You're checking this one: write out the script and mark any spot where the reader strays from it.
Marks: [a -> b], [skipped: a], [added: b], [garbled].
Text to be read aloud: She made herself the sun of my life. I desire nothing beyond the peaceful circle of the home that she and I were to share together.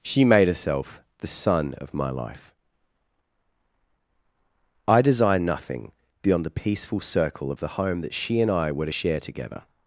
She made herself the sun of my life. I desire nothing beyond the peaceful circle of the home that she and I were to share together.